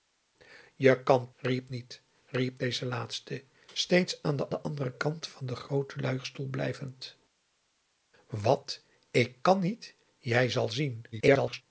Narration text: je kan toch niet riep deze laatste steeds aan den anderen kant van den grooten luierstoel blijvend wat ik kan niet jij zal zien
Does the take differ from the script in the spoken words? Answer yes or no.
yes